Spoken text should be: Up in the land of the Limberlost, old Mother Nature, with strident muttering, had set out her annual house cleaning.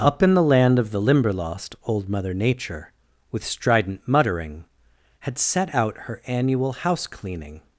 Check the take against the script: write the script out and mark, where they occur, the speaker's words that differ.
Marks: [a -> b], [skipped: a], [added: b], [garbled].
Up in the land of the Limberlost, old Mother Nature, with strident muttering, had set out her annual house cleaning.